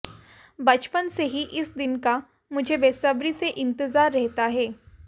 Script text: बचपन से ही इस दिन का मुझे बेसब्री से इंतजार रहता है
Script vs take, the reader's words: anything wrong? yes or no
no